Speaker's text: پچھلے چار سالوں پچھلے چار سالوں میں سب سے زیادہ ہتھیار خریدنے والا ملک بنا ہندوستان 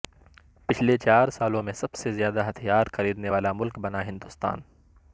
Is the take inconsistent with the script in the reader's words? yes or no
yes